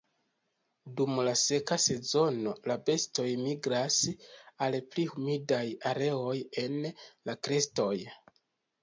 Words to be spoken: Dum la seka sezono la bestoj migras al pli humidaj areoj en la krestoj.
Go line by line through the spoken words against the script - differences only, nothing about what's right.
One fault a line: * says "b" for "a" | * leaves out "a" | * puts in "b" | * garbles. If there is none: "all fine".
all fine